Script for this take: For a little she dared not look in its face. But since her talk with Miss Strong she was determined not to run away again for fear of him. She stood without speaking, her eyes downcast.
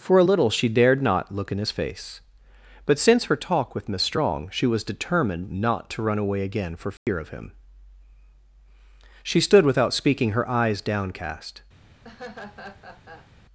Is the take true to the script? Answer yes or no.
no